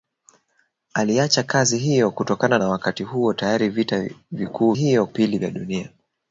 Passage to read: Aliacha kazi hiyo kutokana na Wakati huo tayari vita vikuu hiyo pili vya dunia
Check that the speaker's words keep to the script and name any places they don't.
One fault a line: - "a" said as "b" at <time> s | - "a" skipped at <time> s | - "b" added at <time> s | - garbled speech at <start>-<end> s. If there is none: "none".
none